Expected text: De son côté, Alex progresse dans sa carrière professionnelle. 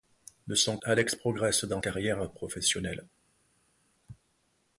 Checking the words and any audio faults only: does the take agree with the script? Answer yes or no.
no